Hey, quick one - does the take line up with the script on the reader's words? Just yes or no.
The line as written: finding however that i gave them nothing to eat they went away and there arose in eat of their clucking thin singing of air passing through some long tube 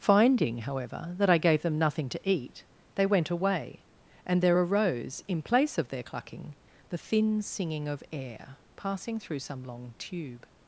no